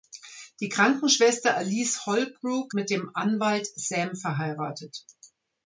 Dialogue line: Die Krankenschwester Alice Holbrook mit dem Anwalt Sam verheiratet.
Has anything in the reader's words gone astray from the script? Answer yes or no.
no